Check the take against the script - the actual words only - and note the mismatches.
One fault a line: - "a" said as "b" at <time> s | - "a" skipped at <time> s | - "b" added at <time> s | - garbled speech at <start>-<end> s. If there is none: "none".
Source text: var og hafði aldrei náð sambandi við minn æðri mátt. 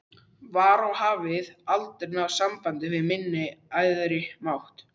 none